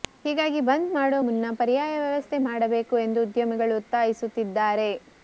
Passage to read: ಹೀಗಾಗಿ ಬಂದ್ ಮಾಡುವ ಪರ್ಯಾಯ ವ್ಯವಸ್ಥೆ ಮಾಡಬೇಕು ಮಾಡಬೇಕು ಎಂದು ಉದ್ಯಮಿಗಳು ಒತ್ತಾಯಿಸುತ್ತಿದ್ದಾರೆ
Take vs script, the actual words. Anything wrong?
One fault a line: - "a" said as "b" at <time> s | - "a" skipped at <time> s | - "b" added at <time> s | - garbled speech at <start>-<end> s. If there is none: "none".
- "ಮುನ್ನ" added at 1.3 s
- "ಮಾಡಬೇಕು" skipped at 3.0 s